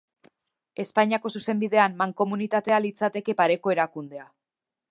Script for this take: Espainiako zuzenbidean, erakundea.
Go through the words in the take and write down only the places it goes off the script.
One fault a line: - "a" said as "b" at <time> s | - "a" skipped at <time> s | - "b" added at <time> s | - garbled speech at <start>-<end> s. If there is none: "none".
- "mankomunitatea litzateke pareko" added at 2.0 s